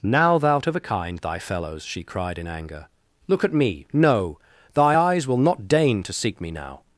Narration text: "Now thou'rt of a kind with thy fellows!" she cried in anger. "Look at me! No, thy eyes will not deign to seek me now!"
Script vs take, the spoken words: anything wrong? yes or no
yes